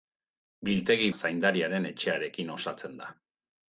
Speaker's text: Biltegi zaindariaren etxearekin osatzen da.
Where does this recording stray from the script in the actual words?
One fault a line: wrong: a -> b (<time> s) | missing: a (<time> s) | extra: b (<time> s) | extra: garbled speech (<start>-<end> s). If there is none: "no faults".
no faults